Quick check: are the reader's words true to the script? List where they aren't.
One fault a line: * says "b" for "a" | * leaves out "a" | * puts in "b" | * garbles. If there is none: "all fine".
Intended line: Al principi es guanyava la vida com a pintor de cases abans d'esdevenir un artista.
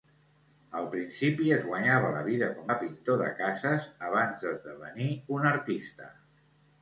all fine